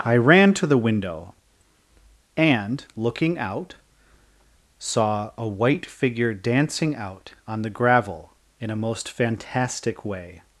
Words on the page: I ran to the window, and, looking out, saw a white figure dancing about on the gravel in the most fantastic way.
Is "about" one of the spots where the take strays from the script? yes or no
yes